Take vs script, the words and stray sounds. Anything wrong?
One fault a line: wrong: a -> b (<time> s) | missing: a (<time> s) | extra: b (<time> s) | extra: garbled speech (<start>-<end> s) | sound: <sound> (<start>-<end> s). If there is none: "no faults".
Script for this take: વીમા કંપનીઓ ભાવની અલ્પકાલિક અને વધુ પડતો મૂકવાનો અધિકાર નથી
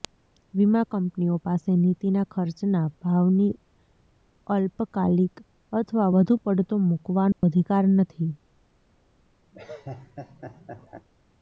extra: પાસે નીતિના ખર્ચના (1.4 s)
wrong: અને -> અથવા (5.7 s)
sound: dropout (7.3-7.4 s)
sound: laugh (9.5-11.1 s)